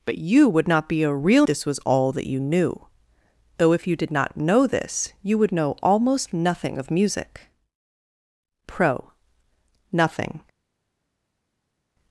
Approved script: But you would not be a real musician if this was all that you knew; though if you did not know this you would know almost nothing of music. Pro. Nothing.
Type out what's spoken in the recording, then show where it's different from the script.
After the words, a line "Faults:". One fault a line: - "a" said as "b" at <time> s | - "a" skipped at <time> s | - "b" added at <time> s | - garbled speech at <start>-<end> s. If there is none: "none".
But you would not be a real this was all that you knew; though if you did not know this you would know almost nothing of music. Pro. Nothing.
Faults:
- "musician if" skipped at 1.5 s